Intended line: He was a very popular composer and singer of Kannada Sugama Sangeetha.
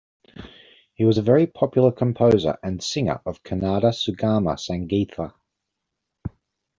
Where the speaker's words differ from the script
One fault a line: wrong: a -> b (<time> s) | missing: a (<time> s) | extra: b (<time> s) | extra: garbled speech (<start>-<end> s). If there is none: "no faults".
no faults